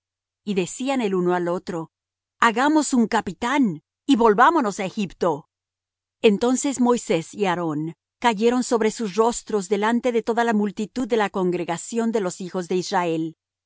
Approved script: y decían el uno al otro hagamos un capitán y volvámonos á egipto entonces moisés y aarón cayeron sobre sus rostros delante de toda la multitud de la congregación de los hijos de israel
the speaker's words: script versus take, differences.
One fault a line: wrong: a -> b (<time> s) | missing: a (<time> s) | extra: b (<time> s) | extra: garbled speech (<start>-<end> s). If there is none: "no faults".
no faults